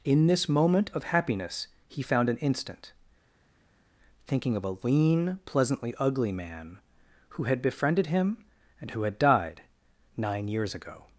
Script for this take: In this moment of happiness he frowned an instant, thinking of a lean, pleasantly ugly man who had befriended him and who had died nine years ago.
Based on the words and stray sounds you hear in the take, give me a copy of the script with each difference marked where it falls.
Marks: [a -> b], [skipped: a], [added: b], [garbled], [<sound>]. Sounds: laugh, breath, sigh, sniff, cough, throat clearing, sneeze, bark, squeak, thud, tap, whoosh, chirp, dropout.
In this moment of happiness he [frowned -> found] an instant, thinking of a lean, pleasantly ugly man who had befriended him and who had died nine years ago.